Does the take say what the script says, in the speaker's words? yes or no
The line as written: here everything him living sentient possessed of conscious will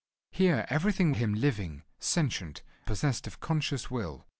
yes